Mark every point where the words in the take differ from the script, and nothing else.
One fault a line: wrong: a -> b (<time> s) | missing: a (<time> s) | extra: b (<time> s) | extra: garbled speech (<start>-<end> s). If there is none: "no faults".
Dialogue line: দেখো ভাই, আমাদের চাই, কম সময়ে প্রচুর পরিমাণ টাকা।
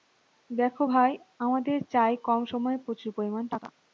no faults